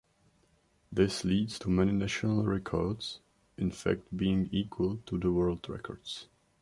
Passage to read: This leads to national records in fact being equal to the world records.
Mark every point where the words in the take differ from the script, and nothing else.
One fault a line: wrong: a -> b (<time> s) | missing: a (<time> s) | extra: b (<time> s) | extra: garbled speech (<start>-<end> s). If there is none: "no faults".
extra: many (1.7 s)